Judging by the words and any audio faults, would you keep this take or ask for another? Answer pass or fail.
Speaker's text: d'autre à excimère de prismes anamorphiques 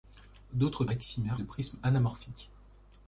pass